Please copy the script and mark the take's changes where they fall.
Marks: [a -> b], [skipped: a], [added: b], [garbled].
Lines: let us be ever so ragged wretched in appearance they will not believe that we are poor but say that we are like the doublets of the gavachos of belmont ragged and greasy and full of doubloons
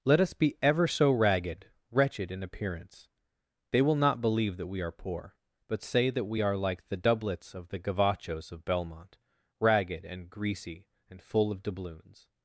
let us be ever so ragged wretched in appearance they will not believe that we are poor but say that we are like the doublets of the gavachos of belmont ragged and greasy and full of doubloons